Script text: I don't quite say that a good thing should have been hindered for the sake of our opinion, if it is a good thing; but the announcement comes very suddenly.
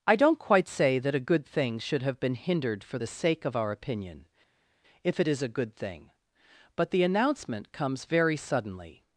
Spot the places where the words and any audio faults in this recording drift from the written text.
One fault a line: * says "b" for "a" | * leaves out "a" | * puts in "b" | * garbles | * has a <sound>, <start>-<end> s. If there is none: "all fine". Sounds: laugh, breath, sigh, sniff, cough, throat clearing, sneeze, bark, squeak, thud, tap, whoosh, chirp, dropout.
all fine